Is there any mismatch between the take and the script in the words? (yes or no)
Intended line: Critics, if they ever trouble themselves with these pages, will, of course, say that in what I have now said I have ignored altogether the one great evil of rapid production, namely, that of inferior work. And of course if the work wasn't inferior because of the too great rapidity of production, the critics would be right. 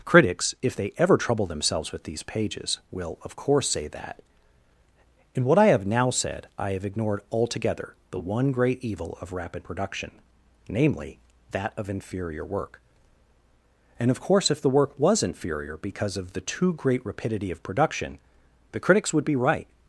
yes